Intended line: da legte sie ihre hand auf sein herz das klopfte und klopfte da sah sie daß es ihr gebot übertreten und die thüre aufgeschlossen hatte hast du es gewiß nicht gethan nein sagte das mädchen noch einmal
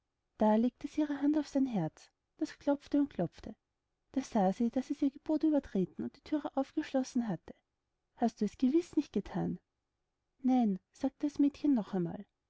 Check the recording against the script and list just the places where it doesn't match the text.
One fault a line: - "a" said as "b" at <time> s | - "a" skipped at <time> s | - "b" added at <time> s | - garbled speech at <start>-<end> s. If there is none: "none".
none